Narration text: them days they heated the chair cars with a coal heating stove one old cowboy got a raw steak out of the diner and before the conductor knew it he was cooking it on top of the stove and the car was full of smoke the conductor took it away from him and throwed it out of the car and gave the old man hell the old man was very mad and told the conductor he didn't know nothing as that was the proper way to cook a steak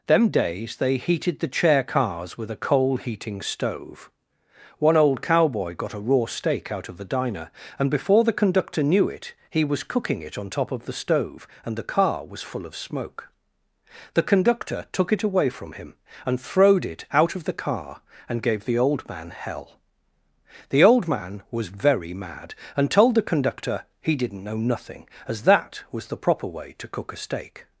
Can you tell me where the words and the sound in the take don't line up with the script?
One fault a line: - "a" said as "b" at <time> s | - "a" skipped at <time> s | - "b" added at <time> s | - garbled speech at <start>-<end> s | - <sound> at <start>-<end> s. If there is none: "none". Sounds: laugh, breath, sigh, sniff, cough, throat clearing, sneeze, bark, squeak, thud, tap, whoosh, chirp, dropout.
none